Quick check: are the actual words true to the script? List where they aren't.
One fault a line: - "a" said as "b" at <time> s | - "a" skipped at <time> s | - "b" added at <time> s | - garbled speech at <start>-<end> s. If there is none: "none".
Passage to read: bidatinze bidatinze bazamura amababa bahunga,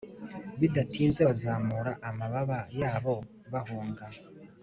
- "bidatinze" skipped at 1.2 s
- "yabo" added at 2.8 s